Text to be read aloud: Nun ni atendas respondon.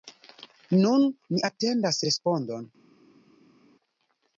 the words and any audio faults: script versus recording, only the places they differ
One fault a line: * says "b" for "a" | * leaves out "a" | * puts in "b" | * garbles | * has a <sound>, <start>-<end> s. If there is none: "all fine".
all fine